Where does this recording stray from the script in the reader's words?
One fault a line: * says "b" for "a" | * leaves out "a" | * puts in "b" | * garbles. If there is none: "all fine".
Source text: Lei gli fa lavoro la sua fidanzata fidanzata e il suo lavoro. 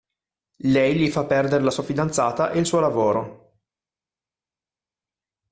* says "perdere" for "lavoro"
* leaves out "fidanzata"